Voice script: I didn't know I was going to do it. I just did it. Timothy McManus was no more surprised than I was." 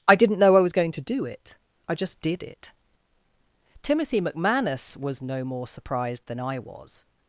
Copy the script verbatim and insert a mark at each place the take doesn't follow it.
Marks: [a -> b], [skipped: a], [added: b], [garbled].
I didn't know I was going to do it. I just did it. Timothy McManus was no more surprised than I was."